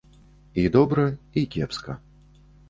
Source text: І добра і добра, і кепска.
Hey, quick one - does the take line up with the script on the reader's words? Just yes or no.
no